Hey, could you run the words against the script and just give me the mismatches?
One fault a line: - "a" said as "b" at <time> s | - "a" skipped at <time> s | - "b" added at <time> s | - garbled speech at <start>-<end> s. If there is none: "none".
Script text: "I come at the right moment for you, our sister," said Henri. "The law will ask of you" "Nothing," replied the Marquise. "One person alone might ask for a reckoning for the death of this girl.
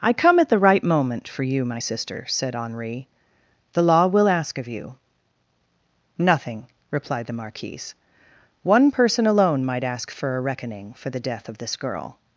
- "our" said as "my" at 1.6 s